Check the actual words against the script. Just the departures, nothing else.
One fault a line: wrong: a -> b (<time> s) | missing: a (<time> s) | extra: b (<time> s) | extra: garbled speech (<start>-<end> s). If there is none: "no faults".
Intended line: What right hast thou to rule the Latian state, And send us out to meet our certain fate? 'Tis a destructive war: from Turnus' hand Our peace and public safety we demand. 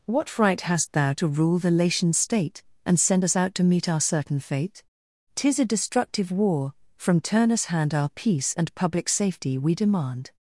no faults